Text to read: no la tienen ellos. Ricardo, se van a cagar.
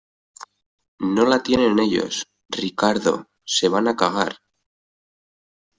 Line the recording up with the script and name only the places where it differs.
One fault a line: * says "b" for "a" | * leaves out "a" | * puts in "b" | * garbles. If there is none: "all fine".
all fine